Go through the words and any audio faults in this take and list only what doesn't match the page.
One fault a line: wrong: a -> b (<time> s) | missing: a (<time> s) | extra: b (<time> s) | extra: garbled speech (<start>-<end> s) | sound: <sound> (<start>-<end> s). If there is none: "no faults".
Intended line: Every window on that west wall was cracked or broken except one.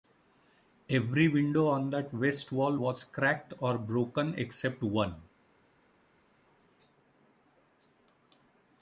no faults